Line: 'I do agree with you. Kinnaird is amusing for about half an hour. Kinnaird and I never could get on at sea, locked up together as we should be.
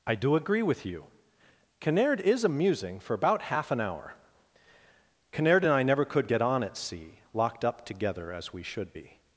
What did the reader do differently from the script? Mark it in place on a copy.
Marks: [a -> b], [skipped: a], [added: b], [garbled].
'I do agree with you. Kinnaird is amusing for about half an hour. Kinnaird and I never could get on at sea, locked up together as we should be.